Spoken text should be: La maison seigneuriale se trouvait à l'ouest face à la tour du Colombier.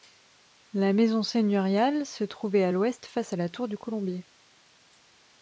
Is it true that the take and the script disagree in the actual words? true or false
false